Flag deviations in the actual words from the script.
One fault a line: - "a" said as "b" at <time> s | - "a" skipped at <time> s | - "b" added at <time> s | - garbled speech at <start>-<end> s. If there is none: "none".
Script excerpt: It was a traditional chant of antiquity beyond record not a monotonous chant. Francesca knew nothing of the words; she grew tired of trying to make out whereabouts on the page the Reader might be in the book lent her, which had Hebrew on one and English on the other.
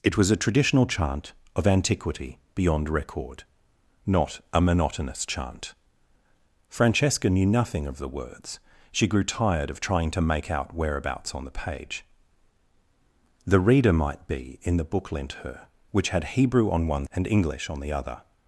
none